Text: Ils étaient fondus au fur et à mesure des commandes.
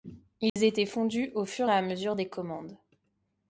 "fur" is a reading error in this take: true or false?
false